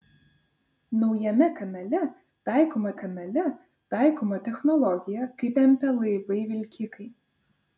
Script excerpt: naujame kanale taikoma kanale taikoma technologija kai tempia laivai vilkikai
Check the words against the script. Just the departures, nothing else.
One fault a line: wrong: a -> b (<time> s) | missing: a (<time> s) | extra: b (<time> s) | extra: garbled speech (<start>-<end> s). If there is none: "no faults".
no faults